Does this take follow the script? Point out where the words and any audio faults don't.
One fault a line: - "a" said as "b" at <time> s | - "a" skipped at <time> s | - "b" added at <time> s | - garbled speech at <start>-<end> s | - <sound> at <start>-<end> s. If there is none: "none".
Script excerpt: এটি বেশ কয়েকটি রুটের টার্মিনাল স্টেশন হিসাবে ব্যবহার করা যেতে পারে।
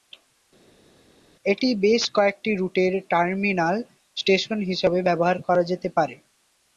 none